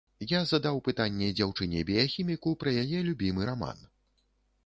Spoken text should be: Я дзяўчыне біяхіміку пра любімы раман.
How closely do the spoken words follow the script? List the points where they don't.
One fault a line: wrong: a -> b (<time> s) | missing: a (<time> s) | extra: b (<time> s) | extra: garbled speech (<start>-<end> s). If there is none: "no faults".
extra: задаў пытанне (0.5 s)
extra: яе (2.9 s)